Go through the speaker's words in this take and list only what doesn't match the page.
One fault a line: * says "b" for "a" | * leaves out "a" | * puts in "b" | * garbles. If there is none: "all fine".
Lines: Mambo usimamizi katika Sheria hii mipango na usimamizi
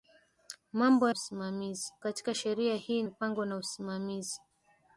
all fine